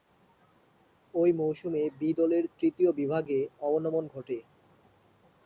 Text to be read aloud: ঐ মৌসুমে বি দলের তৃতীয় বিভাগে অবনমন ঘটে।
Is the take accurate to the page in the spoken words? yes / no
yes